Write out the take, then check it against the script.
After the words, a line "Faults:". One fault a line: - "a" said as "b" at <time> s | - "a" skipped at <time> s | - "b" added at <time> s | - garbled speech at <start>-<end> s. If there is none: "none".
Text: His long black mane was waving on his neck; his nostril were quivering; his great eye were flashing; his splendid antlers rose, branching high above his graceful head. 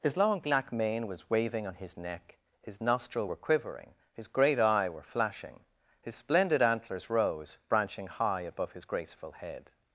His long black mane was waving on his neck; his nostril were quivering; his great eye were flashing; his splendid antlers rose, branching high above his graceful head.
Faults:
none